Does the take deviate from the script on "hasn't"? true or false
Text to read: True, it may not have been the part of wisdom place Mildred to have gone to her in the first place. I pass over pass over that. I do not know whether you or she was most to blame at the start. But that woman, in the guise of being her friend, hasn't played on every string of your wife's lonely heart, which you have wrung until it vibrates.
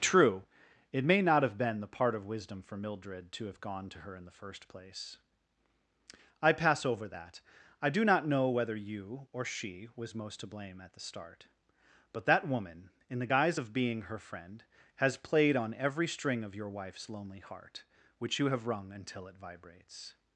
true